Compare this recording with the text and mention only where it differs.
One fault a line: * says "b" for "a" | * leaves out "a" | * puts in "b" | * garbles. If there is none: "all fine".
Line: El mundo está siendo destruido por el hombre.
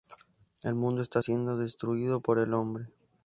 all fine